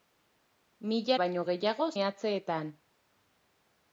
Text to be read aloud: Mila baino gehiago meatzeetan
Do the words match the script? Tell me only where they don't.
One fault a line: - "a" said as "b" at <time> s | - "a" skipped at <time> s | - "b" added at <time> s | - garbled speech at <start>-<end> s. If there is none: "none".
none